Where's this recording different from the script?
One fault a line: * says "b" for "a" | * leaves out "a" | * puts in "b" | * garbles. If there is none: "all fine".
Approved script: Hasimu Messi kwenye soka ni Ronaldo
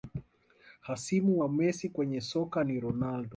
* puts in "wa"